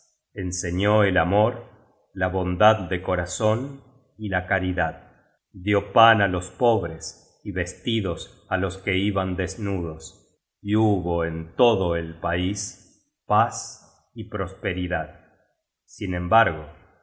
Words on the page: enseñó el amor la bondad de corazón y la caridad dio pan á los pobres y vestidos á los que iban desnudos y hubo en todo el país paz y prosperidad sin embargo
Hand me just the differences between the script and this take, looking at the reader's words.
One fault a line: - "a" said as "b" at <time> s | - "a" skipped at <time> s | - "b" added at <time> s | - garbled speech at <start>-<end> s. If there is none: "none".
none